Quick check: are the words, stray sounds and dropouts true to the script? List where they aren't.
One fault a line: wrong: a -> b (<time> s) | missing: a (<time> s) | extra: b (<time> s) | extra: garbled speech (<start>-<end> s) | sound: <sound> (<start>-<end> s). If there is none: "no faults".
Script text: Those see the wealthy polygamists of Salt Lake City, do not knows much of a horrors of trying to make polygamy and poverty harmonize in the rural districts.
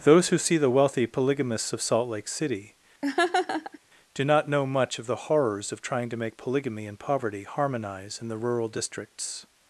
extra: who (0.3 s)
sound: laugh (3.0-3.8 s)
wrong: knows -> know (4.5 s)
wrong: a -> the (5.1 s)